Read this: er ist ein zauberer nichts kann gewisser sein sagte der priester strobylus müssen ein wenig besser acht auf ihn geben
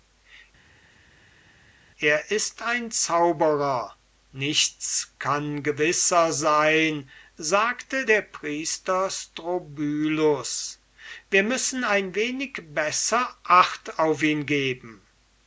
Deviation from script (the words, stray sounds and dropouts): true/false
true